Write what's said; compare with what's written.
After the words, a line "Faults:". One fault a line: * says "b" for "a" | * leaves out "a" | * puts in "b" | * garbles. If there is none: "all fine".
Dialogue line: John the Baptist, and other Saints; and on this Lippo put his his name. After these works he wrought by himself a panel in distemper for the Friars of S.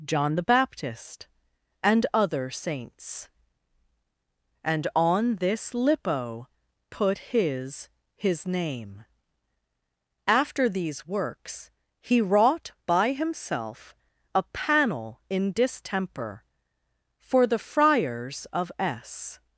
John the Baptist, and other Saints; and on this Lippo put his his name. After these works he wrought by himself a panel in distemper for the Friars of S.
Faults:
all fine